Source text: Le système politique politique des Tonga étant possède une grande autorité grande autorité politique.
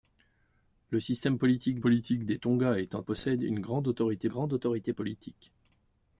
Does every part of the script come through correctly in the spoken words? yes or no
yes